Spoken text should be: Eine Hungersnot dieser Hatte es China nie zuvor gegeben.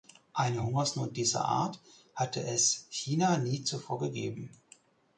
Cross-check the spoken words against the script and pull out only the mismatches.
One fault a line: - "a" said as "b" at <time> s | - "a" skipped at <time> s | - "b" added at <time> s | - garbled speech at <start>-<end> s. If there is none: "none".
- "Art" added at 1.4 s